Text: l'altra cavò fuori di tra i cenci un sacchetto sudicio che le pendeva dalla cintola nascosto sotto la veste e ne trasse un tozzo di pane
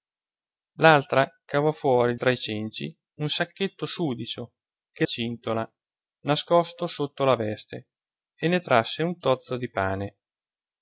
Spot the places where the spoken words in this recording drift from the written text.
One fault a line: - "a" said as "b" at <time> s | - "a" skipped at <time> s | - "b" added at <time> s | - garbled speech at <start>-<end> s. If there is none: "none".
- "di" skipped at 2.2 s
- "le pendeva dalla" skipped at 5.1 s